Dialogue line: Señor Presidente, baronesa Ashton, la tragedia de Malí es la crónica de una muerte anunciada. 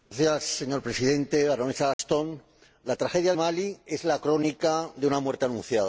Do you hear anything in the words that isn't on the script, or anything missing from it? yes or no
yes